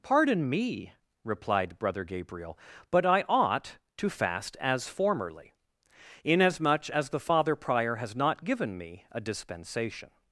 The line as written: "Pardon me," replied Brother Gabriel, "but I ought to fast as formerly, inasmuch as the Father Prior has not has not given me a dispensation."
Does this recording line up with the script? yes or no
no